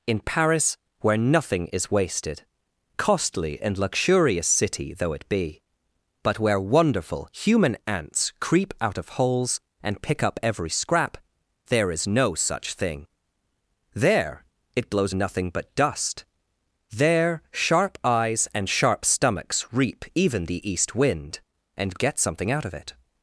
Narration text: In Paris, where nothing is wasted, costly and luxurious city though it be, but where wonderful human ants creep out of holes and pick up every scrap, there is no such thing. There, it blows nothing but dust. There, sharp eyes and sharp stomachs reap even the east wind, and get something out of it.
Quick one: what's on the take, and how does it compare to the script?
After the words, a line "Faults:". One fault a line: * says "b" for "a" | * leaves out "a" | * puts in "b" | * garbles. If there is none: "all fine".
In Paris, where nothing is wasted, costly and luxurious city though it be, but where wonderful human ants creep out of holes and pick up every scrap, there is no such thing. There, it blows nothing but dust. There, sharp eyes and sharp stomachs reap even the east wind, and get something out of it.
Faults:
all fine